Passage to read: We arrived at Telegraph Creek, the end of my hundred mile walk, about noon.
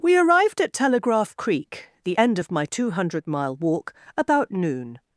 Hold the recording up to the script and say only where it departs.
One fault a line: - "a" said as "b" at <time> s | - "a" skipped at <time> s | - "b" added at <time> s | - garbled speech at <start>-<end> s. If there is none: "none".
- "two" added at 2.7 s